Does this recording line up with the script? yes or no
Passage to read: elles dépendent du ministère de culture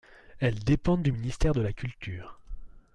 no